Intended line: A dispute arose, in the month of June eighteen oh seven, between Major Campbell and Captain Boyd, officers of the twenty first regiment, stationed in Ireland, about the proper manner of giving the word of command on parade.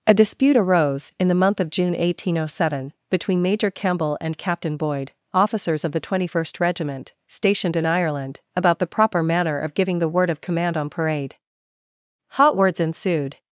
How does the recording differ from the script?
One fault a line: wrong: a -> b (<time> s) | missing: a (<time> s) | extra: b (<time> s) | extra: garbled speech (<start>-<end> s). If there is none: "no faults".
extra: Hot words ensued (12.3 s)